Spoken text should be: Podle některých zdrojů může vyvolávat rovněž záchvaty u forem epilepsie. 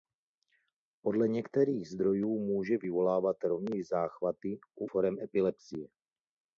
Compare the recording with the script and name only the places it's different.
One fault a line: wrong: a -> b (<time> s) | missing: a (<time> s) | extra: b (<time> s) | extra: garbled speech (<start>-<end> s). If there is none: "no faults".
no faults